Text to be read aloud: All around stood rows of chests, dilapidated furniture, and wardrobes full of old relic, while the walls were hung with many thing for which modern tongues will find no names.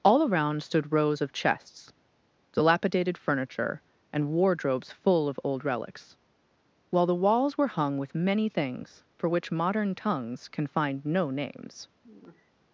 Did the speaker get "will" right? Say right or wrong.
wrong